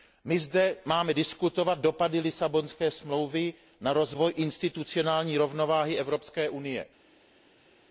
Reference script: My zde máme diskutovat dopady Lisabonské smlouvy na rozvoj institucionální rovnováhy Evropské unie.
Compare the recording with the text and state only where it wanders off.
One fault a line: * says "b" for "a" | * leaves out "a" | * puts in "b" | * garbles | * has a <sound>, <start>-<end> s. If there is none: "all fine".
all fine